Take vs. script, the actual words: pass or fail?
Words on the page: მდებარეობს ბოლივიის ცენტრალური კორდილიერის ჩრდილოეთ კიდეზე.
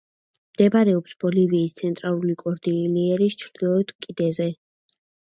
pass